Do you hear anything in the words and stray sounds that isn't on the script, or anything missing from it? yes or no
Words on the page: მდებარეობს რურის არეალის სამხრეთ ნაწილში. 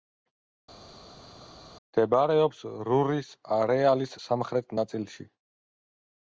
no